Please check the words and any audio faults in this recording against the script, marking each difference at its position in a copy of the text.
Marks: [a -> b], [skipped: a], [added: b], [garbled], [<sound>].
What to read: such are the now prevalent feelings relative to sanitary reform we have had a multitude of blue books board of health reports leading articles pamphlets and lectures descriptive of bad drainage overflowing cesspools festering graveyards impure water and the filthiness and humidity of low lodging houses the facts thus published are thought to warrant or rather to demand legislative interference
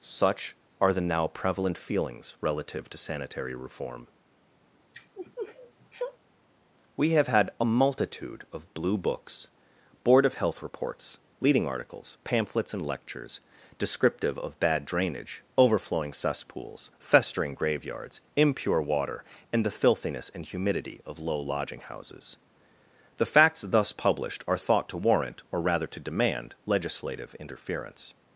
such are the now prevalent feelings relative to sanitary reform [sniff] we have had a multitude of blue books board of health reports leading articles pamphlets and lectures descriptive of bad drainage overflowing cesspools festering graveyards impure water and the filthiness and humidity of low lodging houses the facts thus published are thought to warrant or rather to demand legislative interference